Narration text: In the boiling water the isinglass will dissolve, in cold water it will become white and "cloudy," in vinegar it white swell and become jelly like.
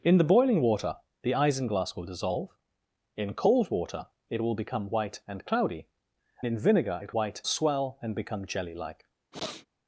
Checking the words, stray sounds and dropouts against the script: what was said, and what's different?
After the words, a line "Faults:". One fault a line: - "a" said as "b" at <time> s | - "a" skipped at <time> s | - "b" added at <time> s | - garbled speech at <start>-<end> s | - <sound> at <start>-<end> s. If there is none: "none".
In the boiling water the isinglass will dissolve, in cold water it will become white and "cloudy," in vinegar it white swell and become jelly like.
Faults:
- sniff at 9.3-9.7 s